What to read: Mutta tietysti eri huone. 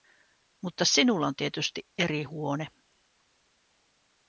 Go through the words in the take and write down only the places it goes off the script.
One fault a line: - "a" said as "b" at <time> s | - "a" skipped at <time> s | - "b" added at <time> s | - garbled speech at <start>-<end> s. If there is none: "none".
- "sinulla on" added at 0.8 s